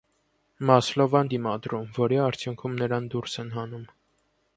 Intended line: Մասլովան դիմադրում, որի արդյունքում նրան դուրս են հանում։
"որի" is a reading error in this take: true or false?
false